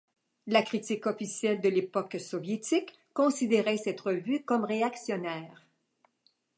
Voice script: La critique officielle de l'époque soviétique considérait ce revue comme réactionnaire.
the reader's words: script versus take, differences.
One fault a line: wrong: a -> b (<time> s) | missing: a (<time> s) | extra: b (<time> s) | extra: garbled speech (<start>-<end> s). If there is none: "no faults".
wrong: ce -> cette (3.8 s)